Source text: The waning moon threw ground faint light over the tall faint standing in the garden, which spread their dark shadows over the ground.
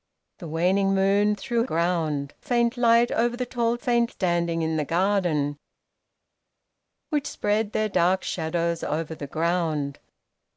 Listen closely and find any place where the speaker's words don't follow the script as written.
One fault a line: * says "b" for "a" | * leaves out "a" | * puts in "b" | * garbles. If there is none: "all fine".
all fine